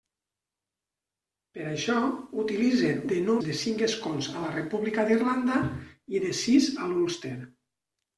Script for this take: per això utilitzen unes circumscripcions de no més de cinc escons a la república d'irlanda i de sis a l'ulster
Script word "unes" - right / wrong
wrong